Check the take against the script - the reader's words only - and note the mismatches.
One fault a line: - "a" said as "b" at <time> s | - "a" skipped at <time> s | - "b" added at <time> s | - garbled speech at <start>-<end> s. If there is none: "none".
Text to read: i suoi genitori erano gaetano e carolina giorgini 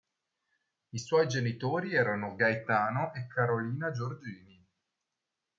none